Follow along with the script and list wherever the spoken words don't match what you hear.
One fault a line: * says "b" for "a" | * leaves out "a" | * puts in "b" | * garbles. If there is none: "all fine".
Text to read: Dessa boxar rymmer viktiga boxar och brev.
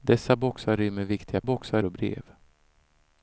all fine